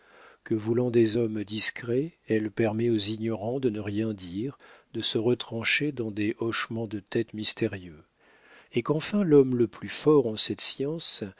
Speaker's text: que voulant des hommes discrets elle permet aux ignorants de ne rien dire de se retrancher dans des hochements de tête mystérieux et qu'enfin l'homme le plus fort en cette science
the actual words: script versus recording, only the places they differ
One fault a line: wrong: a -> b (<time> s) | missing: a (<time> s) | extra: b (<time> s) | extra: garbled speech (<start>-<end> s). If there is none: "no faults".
no faults